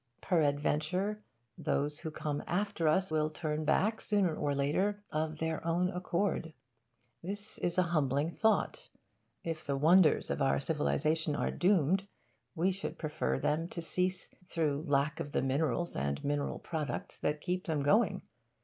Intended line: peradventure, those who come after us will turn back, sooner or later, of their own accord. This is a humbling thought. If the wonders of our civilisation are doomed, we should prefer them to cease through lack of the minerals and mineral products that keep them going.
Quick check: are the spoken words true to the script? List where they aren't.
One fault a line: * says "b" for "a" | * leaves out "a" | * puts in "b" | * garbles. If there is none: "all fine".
all fine